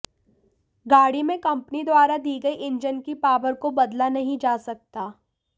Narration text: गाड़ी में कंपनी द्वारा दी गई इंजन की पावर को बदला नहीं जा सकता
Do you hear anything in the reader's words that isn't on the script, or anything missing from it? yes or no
no